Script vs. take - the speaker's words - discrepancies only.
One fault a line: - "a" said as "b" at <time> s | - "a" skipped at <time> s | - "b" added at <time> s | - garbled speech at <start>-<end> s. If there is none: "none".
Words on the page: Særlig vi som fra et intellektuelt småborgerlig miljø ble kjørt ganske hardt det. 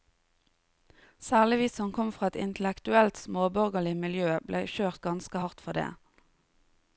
- "kom" added at 2.0 s
- "for" added at 5.7 s